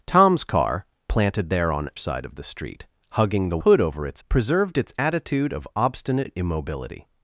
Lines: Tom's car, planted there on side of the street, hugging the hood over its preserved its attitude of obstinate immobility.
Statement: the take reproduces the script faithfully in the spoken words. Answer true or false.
true